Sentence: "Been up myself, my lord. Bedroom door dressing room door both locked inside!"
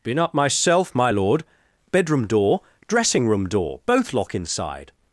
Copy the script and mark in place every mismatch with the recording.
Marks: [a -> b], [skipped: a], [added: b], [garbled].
"Been up myself, my lord. Bedroom door dressing room door both [locked -> lock] inside!"